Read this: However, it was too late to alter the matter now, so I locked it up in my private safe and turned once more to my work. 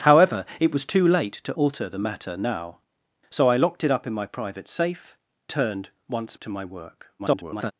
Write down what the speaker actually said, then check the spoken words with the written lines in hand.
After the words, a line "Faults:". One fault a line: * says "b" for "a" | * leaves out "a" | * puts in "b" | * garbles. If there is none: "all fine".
However, it was too late to alter the matter now, so I locked it up in my private safe turned once to my work. [garbled]
Faults:
* leaves out "and"
* leaves out "more"
* garbles